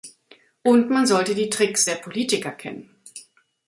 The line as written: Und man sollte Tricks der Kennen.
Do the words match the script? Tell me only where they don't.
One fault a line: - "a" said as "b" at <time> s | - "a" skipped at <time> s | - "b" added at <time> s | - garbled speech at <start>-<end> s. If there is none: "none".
- "die" added at 1.4 s
- "Politiker" added at 1.9 s